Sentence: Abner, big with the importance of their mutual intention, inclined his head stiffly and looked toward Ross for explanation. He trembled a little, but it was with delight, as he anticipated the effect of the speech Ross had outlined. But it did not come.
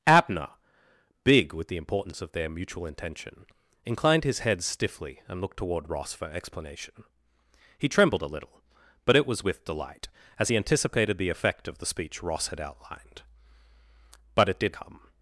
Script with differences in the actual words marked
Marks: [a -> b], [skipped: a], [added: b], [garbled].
Abner, big with the importance of their mutual intention, inclined his head stiffly and looked toward Ross for explanation. He trembled a little, but it was with delight, as he anticipated the effect of the speech Ross had outlined. But it did [skipped: not] come.